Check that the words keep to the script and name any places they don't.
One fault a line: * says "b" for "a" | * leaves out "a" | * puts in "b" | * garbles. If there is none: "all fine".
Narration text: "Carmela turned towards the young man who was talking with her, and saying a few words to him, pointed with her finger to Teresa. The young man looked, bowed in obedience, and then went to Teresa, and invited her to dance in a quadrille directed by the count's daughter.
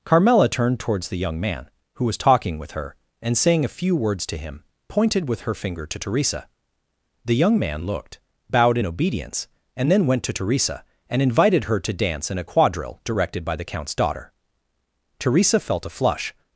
* puts in "Teresa felt a flush"